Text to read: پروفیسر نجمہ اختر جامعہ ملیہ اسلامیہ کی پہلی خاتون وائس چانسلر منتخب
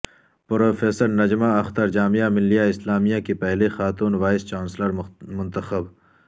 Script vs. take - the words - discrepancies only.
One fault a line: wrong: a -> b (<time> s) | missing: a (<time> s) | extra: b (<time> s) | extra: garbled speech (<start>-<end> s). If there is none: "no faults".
no faults